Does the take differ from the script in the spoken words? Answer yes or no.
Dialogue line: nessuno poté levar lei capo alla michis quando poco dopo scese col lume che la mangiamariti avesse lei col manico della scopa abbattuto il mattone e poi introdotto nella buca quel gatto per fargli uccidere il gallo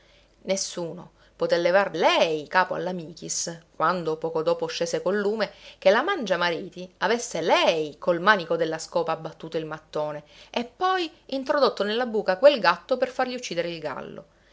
no